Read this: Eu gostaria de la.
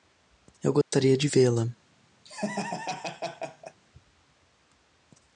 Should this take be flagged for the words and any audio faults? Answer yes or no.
yes